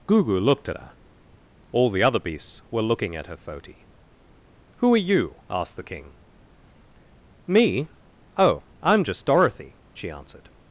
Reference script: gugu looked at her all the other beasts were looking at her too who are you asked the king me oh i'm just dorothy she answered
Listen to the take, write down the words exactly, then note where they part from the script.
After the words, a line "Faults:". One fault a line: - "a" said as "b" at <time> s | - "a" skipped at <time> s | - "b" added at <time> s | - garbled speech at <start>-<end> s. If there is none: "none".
gugu looked at her all the other beasts were looking at her foti who are you asked the king me oh i'm just dorothy she answered
Faults:
- "too" said as "foti" at 3.4 s